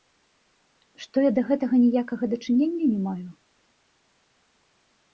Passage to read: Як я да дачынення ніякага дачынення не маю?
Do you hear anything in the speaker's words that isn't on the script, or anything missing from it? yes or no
yes